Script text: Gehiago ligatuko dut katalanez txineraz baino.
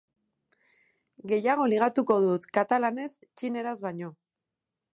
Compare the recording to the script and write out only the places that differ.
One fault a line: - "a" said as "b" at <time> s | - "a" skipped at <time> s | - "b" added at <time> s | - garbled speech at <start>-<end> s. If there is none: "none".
none